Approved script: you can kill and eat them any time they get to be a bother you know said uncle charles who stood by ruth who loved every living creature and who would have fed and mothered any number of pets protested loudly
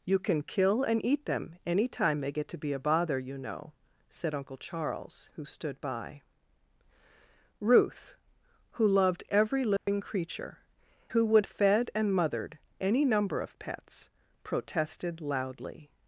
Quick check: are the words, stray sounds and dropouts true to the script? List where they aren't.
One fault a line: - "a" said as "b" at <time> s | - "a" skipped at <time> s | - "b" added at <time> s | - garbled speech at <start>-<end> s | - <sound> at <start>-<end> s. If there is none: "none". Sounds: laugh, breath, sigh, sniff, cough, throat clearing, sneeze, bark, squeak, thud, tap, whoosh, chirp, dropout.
- dropout at 9.8-9.9 s
- "and" skipped at 10.6 s
- "have" skipped at 11.5 s